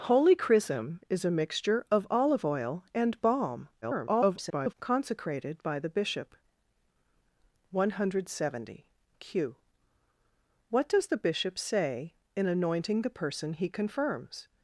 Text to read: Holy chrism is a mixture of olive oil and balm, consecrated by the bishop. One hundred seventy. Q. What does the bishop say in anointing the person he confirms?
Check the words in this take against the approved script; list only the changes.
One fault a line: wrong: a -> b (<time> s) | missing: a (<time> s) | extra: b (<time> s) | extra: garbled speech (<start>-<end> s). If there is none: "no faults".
extra: garbled speech (3.8-4.7 s)